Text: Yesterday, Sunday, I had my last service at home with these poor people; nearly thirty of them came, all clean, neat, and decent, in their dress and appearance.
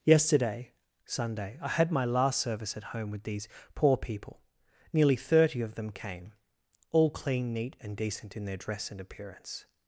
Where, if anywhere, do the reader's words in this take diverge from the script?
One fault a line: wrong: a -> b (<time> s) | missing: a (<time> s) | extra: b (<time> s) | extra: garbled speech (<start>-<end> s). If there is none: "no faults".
no faults